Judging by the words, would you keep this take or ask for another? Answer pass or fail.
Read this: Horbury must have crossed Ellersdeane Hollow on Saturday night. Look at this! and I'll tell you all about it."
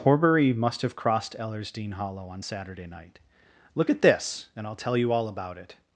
pass